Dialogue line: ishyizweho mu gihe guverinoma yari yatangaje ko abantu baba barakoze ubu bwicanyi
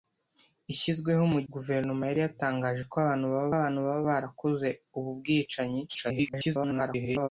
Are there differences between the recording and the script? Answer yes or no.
yes